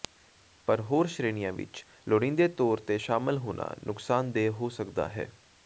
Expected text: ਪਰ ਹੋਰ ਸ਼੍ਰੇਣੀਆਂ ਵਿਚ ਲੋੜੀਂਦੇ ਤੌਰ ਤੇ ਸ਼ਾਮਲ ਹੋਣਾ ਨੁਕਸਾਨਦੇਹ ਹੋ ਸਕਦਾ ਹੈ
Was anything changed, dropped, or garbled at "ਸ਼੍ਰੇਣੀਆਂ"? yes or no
no